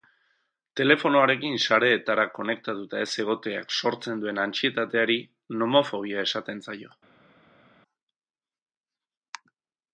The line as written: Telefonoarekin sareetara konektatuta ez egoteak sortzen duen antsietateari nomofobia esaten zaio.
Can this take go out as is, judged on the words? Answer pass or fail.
pass